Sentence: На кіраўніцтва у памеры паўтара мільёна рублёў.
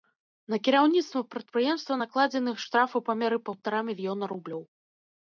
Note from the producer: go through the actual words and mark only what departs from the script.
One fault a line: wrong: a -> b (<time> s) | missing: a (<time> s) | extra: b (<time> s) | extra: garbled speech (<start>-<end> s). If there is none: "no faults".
extra: прадпрыемства накладзены штраф (1.3 s)